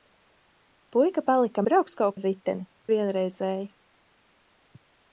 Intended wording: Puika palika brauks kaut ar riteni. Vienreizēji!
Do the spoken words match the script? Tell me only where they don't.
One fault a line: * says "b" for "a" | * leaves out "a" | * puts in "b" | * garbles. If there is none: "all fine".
all fine